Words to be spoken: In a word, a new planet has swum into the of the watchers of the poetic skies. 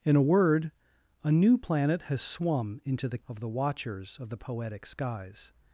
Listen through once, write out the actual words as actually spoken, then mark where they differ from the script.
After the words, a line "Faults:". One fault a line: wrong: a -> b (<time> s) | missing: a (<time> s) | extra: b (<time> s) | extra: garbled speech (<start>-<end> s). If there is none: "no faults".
In a word, a new planet has swum into the of the watchers of the poetic skies.
Faults:
no faults